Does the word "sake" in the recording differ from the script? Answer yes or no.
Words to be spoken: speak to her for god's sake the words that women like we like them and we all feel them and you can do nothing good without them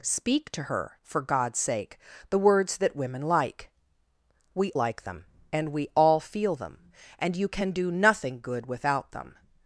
no